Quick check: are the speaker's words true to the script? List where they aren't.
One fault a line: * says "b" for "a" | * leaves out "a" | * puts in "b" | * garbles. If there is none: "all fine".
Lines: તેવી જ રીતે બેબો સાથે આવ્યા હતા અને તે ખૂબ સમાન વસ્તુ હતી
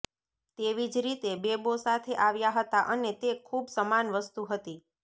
all fine